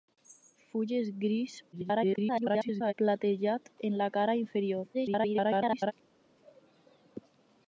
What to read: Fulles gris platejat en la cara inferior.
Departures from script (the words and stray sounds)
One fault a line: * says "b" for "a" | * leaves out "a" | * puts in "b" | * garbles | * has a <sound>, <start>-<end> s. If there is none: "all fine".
* garbles
* garbles